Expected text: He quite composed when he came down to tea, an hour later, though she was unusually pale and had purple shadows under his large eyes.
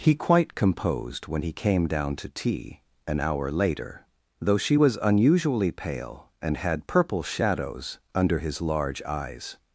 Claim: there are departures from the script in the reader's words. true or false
false